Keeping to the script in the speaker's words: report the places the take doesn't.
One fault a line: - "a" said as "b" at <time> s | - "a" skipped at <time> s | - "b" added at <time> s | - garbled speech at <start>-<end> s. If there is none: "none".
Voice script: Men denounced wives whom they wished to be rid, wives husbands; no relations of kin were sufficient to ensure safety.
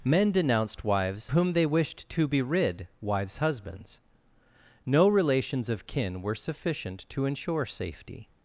none